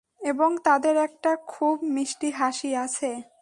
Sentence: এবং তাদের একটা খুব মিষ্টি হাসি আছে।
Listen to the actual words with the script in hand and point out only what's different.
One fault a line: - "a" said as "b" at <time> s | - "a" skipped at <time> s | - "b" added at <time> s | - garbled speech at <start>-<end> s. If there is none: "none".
none